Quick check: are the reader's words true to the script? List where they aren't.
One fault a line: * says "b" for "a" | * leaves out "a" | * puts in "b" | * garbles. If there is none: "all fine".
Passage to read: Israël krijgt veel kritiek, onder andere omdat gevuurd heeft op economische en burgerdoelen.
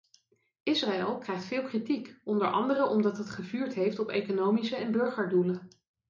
* puts in "het"